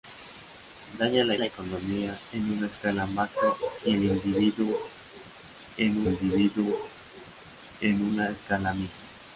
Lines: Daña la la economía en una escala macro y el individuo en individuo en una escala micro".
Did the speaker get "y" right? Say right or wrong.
right